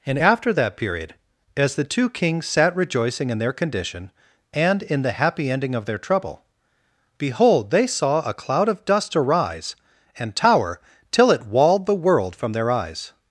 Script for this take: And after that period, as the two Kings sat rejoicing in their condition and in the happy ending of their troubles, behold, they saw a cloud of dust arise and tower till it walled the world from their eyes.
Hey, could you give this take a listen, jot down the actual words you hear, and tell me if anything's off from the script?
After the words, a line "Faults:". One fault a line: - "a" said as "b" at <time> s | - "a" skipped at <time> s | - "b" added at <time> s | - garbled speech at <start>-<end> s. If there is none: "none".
And after that period, as the two Kings sat rejoicing in their condition and in the happy ending of their trouble, behold, they saw a cloud of dust arise and tower till it walled the world from their eyes.
Faults:
- "troubles" said as "trouble" at 6.0 s